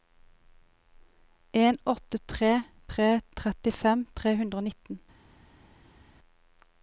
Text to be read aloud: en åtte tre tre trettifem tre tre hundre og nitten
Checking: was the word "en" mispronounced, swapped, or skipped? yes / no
no